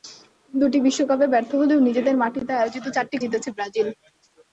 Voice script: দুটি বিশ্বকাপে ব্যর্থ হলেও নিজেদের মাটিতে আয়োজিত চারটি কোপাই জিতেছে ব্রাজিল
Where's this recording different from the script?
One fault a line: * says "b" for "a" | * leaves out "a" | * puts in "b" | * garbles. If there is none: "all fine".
* leaves out "কোপাই"